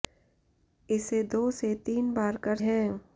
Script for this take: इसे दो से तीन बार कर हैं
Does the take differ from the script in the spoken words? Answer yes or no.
no